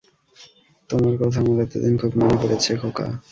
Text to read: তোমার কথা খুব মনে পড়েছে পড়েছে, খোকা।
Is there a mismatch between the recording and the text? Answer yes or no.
yes